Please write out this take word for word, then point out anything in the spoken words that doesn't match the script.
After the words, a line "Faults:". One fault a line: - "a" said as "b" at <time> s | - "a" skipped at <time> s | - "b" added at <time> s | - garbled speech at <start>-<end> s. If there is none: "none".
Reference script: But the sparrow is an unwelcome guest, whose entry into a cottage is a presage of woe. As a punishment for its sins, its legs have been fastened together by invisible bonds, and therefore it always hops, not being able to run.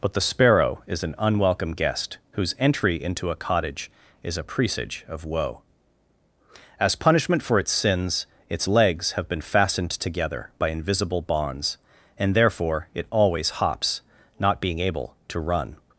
But the sparrow is an unwelcome guest, whose entry into a cottage is a presage of woe. As punishment for its sins, its legs have been fastened together by invisible bonds, and therefore it always hops, not being able to run.
Faults:
- "a" skipped at 7.0 s